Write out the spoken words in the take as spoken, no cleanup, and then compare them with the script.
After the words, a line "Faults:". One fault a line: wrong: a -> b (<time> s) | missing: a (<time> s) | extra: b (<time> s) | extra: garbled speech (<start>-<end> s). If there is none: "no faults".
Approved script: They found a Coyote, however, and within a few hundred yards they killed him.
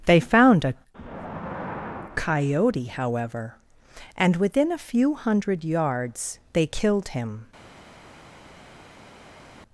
They found a Coyote, however, and within a few hundred yards they killed him.
Faults:
no faults